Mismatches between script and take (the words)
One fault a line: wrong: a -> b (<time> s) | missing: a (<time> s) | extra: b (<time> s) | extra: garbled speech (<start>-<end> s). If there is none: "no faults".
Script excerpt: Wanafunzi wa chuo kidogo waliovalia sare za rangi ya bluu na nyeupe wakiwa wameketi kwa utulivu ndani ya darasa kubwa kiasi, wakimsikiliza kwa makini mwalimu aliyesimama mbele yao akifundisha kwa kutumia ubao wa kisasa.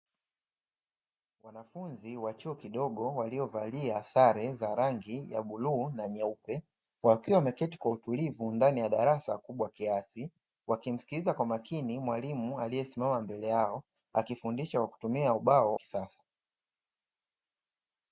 missing: wa (15.8 s)